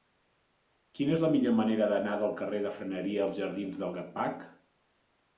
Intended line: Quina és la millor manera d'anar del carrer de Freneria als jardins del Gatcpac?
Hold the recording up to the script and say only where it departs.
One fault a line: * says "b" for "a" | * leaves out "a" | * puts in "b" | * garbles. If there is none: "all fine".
all fine